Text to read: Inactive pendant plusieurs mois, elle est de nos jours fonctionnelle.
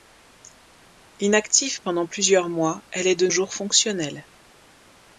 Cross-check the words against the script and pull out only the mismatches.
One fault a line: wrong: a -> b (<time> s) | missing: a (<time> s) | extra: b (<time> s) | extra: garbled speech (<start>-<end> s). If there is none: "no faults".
missing: nos (3.3 s)